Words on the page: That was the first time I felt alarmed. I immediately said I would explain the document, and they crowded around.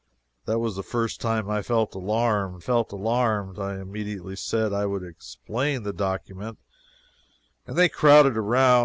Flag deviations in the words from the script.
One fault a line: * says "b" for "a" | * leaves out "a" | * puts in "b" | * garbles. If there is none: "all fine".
* puts in "felt alarmed"